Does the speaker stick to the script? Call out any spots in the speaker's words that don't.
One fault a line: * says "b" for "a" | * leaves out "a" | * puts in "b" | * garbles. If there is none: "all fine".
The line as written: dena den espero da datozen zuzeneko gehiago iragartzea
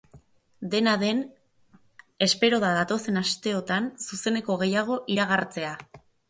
* puts in "asteotan"